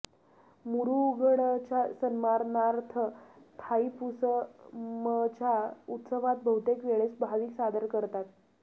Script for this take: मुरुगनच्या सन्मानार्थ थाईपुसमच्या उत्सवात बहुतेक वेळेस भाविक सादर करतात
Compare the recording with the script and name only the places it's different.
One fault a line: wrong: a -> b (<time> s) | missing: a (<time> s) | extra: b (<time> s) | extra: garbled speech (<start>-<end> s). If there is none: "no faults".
no faults